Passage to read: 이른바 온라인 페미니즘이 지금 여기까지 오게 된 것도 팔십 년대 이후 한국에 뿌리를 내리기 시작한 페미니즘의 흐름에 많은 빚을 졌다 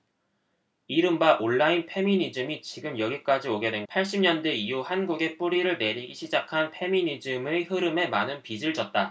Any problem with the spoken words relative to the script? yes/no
yes